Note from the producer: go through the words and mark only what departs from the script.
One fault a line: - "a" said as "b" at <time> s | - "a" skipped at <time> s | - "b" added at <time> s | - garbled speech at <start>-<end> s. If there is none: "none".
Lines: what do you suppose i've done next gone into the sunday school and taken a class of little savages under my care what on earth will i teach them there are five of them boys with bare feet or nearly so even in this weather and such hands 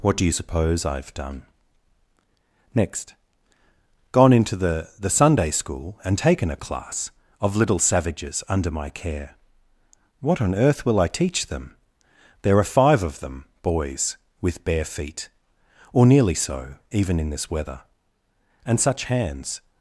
- "the" added at 5.0 s